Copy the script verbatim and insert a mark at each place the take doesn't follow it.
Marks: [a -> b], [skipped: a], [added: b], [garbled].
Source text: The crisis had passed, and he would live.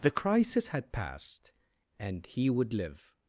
The crisis had passed, and he would live.